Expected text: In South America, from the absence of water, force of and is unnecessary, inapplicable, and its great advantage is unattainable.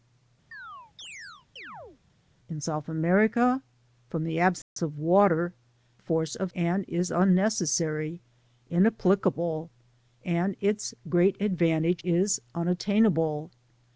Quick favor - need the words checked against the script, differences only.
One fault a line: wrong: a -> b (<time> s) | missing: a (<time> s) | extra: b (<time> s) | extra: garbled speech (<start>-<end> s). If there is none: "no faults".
no faults